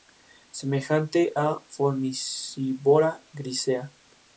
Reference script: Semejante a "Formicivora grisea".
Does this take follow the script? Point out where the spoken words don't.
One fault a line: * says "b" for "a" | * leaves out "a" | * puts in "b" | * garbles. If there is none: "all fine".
all fine